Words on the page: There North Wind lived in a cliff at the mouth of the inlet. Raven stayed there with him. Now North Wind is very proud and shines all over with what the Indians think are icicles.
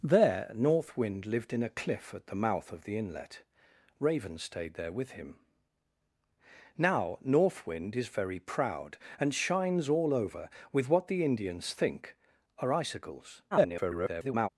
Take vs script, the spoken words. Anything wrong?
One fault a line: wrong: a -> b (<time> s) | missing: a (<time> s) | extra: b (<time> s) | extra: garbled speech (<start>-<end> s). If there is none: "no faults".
extra: garbled speech (13.5-14.5 s)